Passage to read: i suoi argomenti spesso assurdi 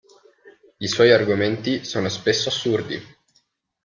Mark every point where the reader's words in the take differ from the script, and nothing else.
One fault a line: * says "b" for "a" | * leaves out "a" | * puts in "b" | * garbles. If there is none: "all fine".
* puts in "sono"